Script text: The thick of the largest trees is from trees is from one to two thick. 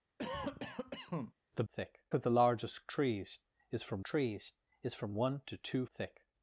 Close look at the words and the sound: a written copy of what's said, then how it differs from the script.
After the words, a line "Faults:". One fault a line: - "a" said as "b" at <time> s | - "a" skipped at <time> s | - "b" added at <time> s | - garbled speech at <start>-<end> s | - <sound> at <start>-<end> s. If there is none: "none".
The thick of the largest trees is from trees is from one to two thick.
Faults:
- cough at 0.2-1.3 s